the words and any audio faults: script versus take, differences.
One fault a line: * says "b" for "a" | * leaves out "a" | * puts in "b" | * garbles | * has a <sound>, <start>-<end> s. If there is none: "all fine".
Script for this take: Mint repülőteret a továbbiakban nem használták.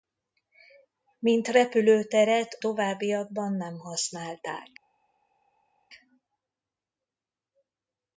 * leaves out "a"